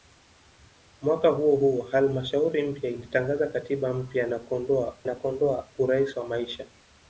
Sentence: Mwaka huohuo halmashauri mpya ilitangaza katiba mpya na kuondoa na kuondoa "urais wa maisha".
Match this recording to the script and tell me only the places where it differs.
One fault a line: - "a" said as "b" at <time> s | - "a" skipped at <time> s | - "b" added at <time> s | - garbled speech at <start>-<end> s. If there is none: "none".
none